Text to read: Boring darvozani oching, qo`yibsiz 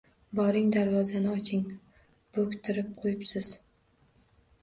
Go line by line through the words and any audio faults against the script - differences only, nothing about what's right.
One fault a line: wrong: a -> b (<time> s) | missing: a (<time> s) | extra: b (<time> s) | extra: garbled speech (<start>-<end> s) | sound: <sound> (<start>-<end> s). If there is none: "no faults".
extra: bo`ktirib (2.4 s)